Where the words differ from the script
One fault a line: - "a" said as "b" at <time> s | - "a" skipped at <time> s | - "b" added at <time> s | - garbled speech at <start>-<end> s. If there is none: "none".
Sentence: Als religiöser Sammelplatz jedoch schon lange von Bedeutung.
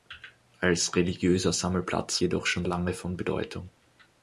none